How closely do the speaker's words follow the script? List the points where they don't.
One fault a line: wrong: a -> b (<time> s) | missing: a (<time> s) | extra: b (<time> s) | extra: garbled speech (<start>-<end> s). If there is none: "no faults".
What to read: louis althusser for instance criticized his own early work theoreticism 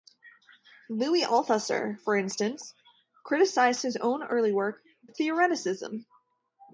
no faults